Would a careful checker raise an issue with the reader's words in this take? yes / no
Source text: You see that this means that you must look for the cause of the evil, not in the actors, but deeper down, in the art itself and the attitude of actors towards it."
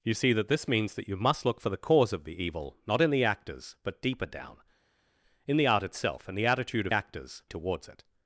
no